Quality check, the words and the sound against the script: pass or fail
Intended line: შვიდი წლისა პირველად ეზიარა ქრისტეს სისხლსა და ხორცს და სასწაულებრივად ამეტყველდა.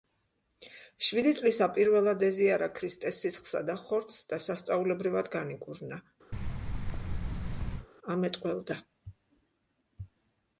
fail